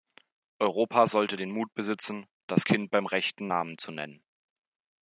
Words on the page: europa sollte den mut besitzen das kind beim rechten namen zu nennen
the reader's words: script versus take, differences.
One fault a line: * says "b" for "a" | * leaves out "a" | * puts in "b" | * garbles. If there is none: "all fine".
all fine